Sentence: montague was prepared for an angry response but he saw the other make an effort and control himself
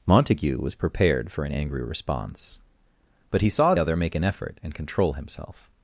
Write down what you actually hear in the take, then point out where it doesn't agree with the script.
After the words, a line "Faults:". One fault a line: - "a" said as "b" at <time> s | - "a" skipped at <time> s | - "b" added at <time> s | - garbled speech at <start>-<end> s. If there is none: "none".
montague was prepared for an angry response but he saw other make an effort and control himself
Faults:
- "the" skipped at 3.8 s